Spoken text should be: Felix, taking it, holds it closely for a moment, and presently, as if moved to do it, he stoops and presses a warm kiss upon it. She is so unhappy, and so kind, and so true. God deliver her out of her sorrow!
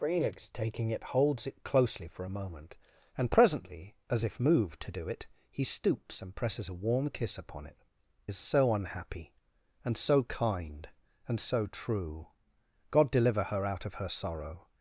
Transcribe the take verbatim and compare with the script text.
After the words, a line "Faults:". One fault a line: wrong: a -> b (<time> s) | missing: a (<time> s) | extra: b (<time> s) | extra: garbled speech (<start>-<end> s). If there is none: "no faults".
Felix, taking it, holds it closely for a moment, and presently, as if moved to do it, he stoops and presses a warm kiss upon it. Is so unhappy, and so kind, and so true. God deliver her out of her sorrow!
Faults:
missing: She (7.8 s)